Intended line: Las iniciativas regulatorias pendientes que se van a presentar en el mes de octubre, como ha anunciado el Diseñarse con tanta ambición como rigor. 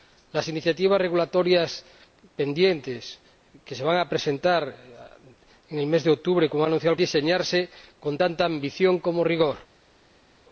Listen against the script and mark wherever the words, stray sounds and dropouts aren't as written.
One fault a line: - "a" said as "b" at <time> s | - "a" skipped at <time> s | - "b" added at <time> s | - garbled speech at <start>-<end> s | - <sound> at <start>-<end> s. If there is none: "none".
none